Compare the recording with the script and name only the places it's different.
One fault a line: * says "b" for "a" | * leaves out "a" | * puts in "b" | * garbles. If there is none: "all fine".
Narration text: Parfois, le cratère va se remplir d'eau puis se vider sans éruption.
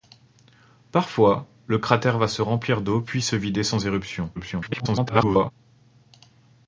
* garbles